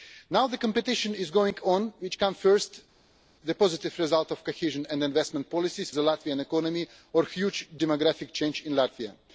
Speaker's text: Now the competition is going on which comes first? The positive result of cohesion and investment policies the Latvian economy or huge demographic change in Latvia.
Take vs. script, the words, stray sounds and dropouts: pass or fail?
pass